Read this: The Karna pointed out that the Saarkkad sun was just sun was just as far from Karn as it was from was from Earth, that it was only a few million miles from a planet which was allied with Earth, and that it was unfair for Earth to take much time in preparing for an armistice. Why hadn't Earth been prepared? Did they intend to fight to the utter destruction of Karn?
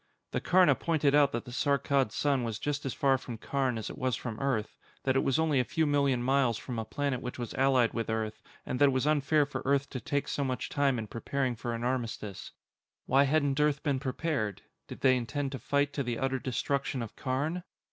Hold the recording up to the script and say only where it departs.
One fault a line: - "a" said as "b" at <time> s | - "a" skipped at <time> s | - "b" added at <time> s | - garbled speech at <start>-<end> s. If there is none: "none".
- "sun was just" skipped at 2.9 s
- "was from" skipped at 4.4 s
- "so" added at 10.3 s